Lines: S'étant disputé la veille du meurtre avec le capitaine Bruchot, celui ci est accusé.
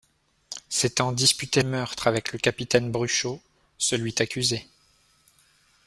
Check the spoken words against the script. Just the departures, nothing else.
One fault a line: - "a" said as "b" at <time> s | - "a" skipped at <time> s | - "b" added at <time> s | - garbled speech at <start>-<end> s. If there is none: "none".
- "la veille du" skipped at 1.6 s
- "ci" skipped at 4.1 s